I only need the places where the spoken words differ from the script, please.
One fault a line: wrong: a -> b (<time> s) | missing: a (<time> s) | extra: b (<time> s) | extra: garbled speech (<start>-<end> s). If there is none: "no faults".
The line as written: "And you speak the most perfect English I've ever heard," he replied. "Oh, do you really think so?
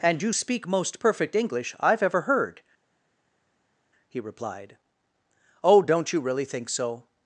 missing: the (0.7 s)
wrong: do -> don't (5.8 s)